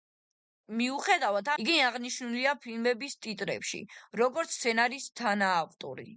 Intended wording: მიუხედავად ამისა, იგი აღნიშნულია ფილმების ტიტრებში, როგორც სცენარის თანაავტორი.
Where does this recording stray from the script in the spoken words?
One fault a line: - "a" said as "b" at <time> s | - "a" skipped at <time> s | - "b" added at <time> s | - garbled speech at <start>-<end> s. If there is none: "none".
- "ამისა" skipped at 1.5 s